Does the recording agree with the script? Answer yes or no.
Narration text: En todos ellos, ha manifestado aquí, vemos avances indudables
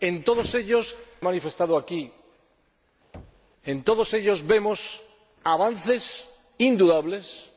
yes